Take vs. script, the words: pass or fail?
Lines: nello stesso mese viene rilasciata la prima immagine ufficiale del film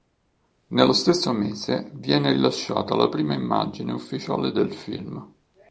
pass